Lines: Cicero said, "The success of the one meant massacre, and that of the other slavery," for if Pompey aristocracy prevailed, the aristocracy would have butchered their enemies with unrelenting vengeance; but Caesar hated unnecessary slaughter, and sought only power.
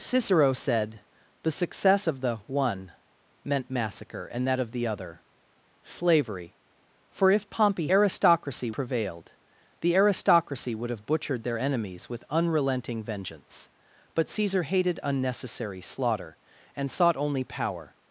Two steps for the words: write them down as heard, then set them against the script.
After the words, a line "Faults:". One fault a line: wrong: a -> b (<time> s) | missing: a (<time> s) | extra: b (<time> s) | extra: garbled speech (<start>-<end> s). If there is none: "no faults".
Cicero said, "The success of the one meant massacre, and that of the other slavery," for if Pompey aristocracy prevailed, the aristocracy would have butchered their enemies with unrelenting vengeance; but Caesar hated unnecessary slaughter, and sought only power.
Faults:
no faults